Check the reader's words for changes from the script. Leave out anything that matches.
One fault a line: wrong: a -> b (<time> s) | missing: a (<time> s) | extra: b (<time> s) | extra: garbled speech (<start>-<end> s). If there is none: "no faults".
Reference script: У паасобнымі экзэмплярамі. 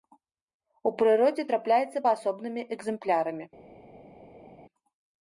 extra: прыродзе трапляецца (1.0 s)